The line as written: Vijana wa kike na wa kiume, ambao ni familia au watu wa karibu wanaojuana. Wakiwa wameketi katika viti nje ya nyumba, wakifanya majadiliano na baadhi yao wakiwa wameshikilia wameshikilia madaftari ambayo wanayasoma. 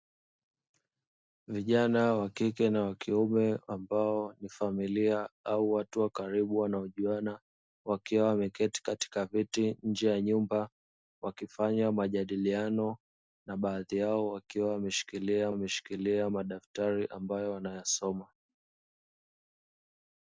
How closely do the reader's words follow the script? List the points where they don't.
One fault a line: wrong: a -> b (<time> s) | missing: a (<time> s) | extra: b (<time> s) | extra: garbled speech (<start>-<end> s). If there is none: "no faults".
no faults